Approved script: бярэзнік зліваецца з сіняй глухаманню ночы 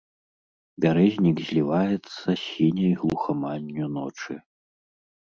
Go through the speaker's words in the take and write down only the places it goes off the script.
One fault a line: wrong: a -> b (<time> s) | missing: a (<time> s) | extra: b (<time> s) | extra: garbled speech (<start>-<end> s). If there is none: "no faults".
no faults